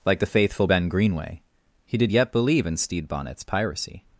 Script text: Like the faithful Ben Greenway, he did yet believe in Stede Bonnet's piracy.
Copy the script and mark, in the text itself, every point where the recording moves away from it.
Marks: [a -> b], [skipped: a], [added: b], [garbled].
Like the faithful Ben Greenway, he did yet believe in Stede Bonnet's piracy.